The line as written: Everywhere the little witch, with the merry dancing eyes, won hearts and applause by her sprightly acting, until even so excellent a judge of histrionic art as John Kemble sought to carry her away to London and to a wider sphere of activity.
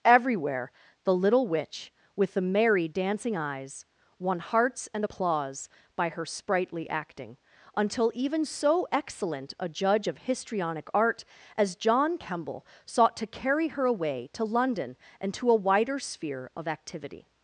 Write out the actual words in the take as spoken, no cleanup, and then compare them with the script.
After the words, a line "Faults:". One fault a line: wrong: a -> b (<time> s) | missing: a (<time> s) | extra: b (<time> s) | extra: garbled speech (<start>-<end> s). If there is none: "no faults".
Everywhere the little witch, with the merry dancing eyes, won hearts and applause by her sprightly acting, until even so excellent a judge of histrionic art as John Kemble sought to carry her away to London and to a wider sphere of activity.
Faults:
no faults